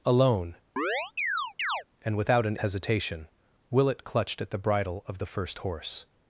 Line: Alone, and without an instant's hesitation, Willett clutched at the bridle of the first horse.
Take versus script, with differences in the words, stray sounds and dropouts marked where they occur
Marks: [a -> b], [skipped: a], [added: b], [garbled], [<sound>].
Alone, [chirp] and without an [skipped: instant's] hesitation, Willett clutched at the bridle of the first horse.